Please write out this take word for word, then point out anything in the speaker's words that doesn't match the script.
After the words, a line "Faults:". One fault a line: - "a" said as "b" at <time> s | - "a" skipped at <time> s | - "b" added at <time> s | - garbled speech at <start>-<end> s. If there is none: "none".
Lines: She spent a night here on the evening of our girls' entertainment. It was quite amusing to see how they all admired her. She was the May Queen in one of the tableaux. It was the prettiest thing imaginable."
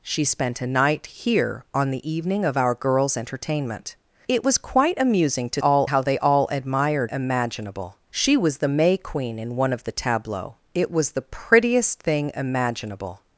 She spent a night here on the evening of our girls' entertainment. It was quite amusing to all how they all admired imaginable. She was the May Queen in one of the tableaux. It was the prettiest thing imaginable."
Faults:
- "see" said as "all" at 5.6 s
- "her" said as "imaginable" at 7.1 s